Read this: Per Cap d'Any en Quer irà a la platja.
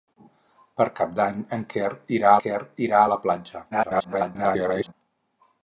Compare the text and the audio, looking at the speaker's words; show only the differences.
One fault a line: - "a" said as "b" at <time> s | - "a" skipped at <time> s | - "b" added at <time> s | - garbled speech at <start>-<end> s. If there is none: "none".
- "Quer irà" added at 2.4 s
- garbled speech at 3.7-4.9 s